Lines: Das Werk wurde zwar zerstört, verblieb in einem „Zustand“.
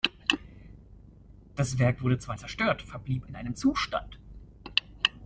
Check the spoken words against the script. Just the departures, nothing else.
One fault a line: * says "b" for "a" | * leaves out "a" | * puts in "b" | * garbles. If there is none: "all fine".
all fine